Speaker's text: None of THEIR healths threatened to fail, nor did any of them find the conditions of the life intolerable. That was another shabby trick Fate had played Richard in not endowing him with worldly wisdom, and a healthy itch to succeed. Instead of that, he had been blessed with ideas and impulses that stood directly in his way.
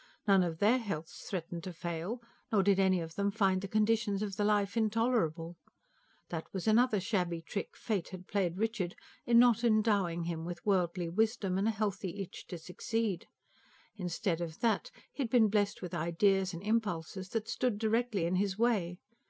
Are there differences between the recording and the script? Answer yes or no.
no